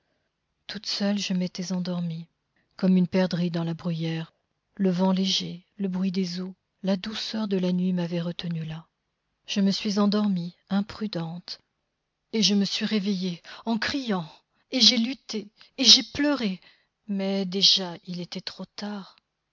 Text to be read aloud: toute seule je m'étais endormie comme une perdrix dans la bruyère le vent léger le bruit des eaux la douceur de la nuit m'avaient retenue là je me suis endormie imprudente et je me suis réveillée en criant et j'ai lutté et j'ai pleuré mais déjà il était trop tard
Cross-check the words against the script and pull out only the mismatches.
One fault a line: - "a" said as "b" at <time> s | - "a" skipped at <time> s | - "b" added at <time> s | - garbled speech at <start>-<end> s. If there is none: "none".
none